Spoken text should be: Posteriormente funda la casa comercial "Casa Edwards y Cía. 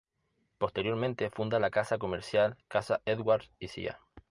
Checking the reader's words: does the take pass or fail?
pass